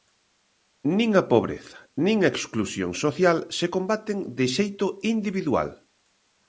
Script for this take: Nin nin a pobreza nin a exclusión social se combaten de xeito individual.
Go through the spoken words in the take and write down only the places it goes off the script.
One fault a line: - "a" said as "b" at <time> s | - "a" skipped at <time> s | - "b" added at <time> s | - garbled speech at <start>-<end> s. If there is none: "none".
- "nin" skipped at 1.1 s